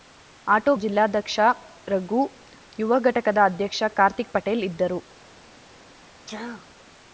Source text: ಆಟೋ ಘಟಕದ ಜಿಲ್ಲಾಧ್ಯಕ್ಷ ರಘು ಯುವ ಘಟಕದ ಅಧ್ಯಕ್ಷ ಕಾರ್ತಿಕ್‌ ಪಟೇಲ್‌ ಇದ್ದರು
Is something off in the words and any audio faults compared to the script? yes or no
yes